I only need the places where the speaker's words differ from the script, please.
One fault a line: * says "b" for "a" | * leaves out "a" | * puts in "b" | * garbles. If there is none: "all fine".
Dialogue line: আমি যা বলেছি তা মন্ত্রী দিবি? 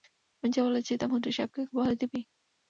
* puts in "সাহেবকে বলে"